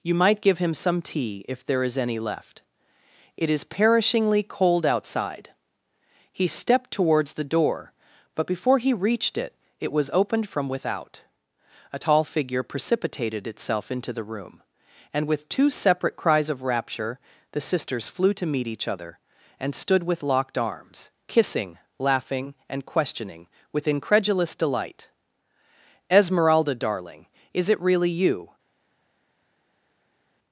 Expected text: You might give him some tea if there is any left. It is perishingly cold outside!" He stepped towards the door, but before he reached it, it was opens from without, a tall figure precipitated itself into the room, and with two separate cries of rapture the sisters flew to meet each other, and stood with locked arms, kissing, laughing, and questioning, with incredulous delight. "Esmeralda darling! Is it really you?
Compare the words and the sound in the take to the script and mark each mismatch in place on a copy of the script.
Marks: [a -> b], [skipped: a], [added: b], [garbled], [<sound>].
You might give him some tea if there is any left. It is perishingly cold outside!" He stepped towards the door, but before he reached it, it was [opens -> opened] from without, a tall figure precipitated itself into the room, and with two separate cries of rapture the sisters flew to meet each other, and stood with locked arms, kissing, laughing, and questioning, with incredulous delight. "Esmeralda darling! Is it really you?